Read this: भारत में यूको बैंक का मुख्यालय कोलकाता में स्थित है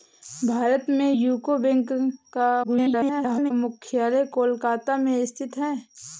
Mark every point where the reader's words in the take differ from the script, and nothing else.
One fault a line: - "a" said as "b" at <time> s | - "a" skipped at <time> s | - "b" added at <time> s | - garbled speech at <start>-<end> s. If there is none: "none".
- garbled speech at 2.6-3.5 s